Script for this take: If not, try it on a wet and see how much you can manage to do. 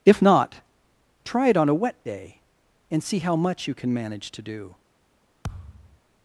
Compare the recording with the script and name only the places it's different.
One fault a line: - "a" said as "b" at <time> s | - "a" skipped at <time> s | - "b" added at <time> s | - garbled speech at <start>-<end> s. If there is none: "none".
- "day" added at 2.0 s